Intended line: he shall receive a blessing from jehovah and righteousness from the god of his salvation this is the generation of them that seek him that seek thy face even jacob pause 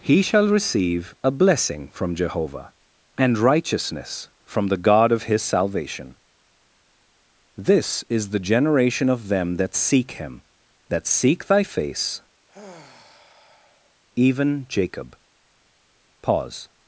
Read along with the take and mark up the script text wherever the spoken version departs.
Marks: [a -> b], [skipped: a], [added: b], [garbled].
he shall receive a blessing from jehovah and righteousness from the god of his salvation this is the generation of them that seek him that seek thy face even jacob pause